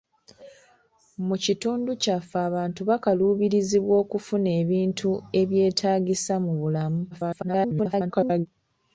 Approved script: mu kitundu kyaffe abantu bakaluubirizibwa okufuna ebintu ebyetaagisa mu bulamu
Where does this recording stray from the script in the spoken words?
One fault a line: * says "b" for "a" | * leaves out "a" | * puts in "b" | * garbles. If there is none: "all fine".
* garbles